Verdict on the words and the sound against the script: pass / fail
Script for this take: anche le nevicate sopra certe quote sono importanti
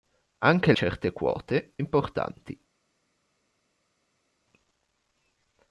fail